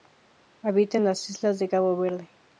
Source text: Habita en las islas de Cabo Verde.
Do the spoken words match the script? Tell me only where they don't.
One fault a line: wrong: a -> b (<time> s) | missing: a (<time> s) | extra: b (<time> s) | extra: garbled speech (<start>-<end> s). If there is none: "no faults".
no faults